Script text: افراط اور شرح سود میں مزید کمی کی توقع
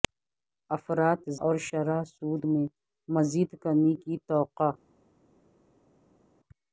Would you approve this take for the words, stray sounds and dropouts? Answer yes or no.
yes